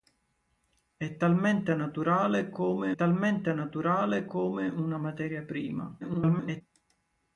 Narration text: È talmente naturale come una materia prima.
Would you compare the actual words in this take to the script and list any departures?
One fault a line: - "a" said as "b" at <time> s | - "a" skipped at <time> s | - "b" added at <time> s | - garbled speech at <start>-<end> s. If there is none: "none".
- "talmente naturale come" added at 2.9 s
- garbled speech at 6.0-6.6 s